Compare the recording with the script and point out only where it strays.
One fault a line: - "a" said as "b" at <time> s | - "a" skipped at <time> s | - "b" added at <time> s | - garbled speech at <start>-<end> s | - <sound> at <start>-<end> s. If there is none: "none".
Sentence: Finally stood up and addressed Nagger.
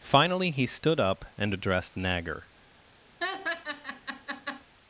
- "he" added at 0.5 s
- laugh at 3.2-4.6 s